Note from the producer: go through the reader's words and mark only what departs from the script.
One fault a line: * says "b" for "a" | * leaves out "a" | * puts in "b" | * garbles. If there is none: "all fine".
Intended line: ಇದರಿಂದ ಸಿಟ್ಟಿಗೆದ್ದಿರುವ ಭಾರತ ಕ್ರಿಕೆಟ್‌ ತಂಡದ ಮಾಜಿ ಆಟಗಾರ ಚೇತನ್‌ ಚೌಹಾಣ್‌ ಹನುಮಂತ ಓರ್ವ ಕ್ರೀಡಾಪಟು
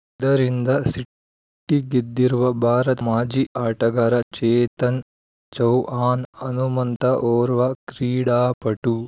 * leaves out "ಕ್ರಿಕೆಟ್ ತಂಡದ"